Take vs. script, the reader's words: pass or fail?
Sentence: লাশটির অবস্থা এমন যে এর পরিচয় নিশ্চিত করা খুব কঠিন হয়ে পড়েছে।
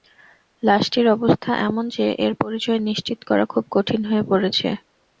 pass